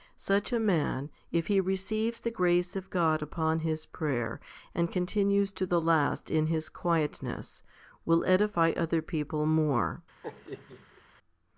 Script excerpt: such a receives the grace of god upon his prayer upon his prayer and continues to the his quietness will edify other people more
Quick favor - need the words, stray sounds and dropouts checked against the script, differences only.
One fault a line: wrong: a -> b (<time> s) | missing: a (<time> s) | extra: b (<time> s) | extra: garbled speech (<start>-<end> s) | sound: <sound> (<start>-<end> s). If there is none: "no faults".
extra: man if he (0.6 s)
missing: upon his prayer (4.4 s)
extra: last in (5.8 s)
sound: laugh (10.2-11.0 s)